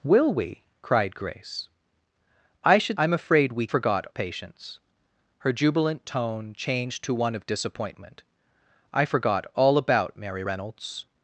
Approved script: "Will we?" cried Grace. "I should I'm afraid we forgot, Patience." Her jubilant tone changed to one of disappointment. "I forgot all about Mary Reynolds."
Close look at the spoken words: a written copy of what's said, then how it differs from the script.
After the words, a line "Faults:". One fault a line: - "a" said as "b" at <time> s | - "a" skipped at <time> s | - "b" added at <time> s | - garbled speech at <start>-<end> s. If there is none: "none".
"Will we?" cried Grace. "I should I'm afraid we forgot, Patience." Her jubilant tone changed to one of disappointment. "I forgot all about Mary Reynolds."
Faults:
none